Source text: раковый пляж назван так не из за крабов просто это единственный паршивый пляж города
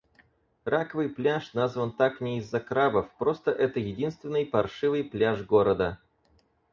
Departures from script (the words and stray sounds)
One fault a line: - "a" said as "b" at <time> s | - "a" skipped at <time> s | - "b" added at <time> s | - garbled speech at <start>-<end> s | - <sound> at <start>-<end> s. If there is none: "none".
none